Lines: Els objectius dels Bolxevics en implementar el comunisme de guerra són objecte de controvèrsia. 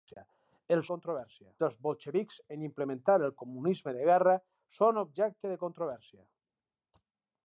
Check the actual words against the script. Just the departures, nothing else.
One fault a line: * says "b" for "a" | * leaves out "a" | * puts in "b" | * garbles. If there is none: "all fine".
* says "controvèrsia" for "objectius"